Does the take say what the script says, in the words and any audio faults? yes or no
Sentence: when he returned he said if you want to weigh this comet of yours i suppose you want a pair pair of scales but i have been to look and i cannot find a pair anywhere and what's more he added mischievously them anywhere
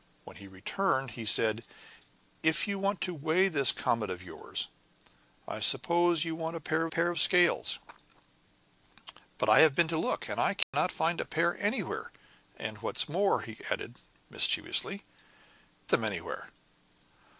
no